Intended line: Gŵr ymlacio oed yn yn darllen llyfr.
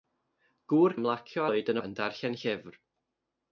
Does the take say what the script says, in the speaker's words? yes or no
yes